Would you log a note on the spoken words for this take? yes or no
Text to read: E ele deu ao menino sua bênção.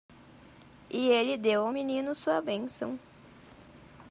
no